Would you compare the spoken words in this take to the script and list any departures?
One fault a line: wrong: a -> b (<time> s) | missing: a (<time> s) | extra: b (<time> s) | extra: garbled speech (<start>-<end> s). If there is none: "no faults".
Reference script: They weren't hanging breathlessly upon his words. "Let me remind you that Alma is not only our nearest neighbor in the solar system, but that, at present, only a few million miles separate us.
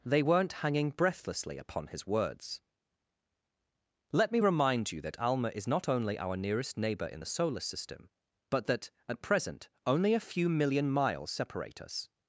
no faults